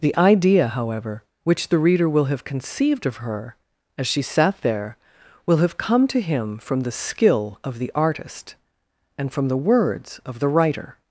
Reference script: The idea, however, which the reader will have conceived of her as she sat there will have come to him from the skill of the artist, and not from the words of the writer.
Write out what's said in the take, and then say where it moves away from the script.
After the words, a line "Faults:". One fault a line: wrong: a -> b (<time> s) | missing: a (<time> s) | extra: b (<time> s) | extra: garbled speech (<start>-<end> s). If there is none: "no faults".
The idea, however, which the reader will have conceived of her as she sat there will have come to him from the skill of the artist, and from the words of the writer.
Faults:
missing: not (9.3 s)